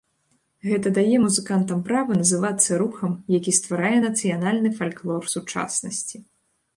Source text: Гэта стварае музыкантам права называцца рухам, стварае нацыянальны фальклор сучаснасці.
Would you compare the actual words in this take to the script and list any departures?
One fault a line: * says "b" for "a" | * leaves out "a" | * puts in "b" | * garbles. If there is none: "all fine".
* says "дае" for "стварае"
* puts in "які"